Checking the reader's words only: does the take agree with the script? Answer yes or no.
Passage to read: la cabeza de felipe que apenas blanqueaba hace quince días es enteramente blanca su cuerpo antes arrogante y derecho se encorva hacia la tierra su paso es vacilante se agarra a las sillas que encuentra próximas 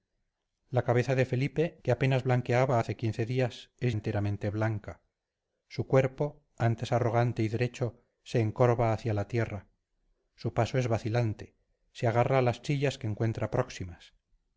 yes